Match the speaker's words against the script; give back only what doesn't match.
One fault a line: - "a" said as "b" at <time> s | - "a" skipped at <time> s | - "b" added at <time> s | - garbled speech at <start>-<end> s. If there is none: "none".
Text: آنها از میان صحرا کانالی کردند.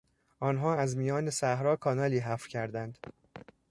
- "حفر" added at 2.2 s